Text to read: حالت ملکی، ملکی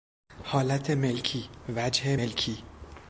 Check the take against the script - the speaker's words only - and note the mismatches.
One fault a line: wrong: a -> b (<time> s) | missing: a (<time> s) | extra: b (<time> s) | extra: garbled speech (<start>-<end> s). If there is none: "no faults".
extra: وجه (1.8 s)